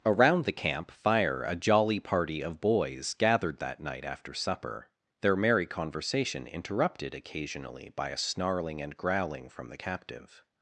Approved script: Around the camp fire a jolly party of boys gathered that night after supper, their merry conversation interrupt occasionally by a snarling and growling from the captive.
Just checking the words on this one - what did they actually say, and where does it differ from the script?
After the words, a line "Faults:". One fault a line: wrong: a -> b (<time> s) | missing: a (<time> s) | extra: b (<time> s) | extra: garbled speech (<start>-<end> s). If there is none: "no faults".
Around the camp fire a jolly party of boys gathered that night after supper, their merry conversation interrupted occasionally by a snarling and growling from the captive.
Faults:
wrong: interrupt -> interrupted (6.5 s)